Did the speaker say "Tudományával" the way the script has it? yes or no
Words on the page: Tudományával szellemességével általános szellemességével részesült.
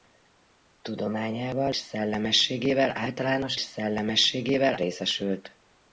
yes